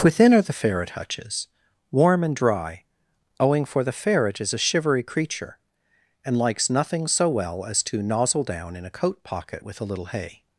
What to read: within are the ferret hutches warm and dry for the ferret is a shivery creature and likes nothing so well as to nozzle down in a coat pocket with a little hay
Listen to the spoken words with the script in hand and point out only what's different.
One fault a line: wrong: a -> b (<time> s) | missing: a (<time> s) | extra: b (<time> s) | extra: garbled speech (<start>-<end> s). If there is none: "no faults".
extra: owing (3.4 s)